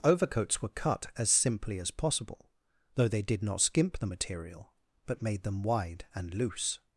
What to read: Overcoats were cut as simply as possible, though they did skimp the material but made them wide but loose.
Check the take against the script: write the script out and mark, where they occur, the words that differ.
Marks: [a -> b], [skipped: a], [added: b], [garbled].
Overcoats were cut as simply as possible, though they did [added: not] skimp the material but made them wide [but -> and] loose.